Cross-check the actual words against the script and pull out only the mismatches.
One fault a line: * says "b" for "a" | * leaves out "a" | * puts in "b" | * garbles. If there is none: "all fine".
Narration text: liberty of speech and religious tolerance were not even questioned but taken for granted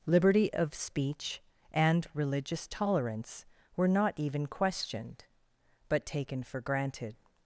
all fine